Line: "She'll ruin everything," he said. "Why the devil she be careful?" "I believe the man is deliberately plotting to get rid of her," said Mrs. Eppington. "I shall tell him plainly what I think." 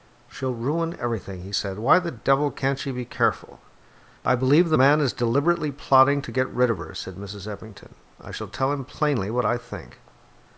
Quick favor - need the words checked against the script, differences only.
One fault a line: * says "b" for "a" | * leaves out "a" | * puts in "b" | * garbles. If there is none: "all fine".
* puts in "can't"